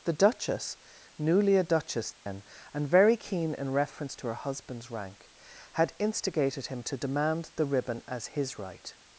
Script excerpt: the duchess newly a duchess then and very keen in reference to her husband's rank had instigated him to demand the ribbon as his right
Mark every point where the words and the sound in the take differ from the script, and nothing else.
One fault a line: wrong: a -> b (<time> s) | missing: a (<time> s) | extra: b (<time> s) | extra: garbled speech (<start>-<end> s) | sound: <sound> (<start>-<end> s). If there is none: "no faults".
sound: dropout (2.1-2.3 s)